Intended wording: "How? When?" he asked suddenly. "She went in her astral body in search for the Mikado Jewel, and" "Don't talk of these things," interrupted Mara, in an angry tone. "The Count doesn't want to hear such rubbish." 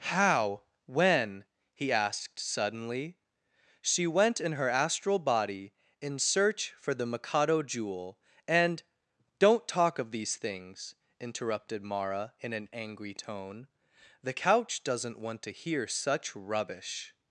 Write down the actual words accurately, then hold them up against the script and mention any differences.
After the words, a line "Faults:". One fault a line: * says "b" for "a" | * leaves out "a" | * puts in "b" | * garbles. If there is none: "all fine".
"How? When?" he asked suddenly. "She went in her astral body in search for the Mikado Jewel, and" "Don't talk of these things," interrupted Mara, in an angry tone. "The Couch doesn't want to hear such rubbish."
Faults:
* says "Couch" for "Count"